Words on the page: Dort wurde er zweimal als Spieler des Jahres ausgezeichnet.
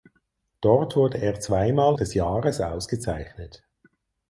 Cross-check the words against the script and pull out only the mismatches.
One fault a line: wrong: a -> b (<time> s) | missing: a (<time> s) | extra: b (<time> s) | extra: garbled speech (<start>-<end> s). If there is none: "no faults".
missing: als Spieler (1.9 s)